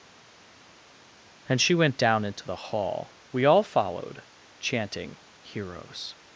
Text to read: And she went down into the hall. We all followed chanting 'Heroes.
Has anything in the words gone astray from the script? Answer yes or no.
no